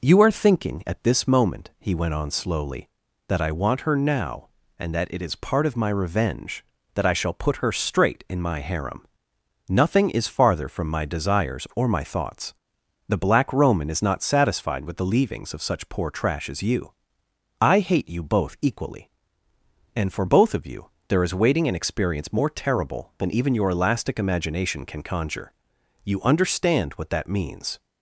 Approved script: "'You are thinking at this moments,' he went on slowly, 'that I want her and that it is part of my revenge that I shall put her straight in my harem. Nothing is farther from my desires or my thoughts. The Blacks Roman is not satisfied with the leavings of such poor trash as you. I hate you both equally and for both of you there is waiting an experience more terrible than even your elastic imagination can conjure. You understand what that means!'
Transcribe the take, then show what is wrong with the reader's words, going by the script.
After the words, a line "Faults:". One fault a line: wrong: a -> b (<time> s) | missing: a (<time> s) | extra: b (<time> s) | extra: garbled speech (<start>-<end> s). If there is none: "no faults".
"'You are thinking at this moment,' he went on slowly, 'that I want her now, and that it is part of my revenge that I shall put her straight in my harem. Nothing is farther from my desires or my thoughts. The Black Roman is not satisfied with the leavings of such poor trash as you. I hate you both equally and for both of you there is waiting an experience more terrible than even your elastic imagination can conjure. You understand what that means!'
Faults:
wrong: moments -> moment (1.3 s)
extra: now (4.0 s)
wrong: Blacks -> Black (13.2 s)